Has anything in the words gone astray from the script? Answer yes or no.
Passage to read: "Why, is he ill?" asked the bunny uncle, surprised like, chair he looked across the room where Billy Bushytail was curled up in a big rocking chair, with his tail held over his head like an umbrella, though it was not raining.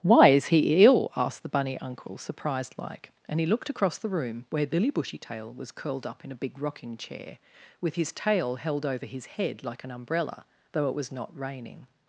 yes